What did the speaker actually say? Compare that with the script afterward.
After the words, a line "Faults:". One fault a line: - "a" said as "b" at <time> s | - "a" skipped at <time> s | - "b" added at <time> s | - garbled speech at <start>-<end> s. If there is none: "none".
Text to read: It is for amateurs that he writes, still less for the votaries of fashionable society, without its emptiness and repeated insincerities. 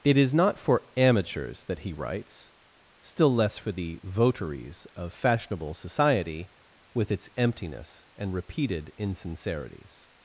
It is not for amateurs that he writes, still less for the votaries of fashionable society, with its emptiness and repeated insincerities.
Faults:
- "not" added at 0.3 s
- "without" said as "with" at 6.9 s